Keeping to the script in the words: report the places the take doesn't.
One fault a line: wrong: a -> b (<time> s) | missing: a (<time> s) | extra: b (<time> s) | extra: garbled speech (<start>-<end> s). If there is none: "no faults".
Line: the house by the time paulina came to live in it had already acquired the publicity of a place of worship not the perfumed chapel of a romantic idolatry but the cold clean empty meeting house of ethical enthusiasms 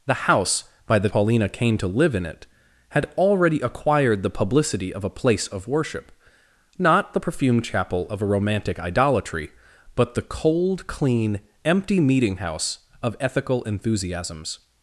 missing: time (1.1 s)